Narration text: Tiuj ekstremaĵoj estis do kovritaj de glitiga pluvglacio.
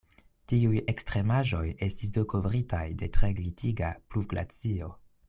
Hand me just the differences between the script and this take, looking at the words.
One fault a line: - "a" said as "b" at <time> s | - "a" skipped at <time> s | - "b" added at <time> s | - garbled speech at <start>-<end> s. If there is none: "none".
- "tre" added at 3.1 s